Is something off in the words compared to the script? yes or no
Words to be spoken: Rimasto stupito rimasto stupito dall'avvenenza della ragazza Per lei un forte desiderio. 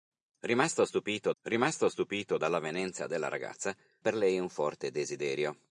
no